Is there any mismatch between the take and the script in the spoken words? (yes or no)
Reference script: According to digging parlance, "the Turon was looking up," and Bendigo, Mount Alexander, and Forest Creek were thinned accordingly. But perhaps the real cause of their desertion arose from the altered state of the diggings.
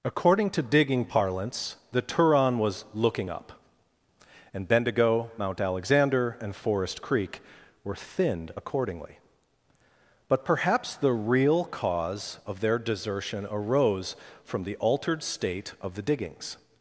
no